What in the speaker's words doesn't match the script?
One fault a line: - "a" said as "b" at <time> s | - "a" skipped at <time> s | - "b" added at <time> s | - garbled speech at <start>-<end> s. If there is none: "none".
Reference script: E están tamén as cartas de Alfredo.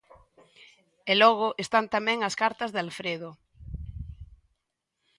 - "logo" added at 1.2 s